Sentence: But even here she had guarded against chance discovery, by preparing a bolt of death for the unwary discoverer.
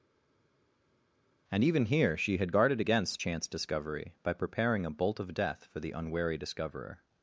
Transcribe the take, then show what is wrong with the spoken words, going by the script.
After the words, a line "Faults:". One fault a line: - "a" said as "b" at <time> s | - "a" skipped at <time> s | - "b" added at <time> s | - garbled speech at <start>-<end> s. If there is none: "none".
And even here she had guarded against chance discovery, by preparing a bolt of death for the unwary discoverer.
Faults:
- "But" said as "And" at 1.5 s